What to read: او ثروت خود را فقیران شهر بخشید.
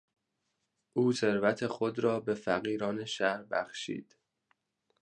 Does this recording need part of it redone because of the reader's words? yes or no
yes